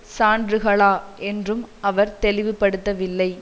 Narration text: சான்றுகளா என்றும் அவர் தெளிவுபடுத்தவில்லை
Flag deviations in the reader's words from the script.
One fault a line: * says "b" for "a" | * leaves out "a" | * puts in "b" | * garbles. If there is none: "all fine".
all fine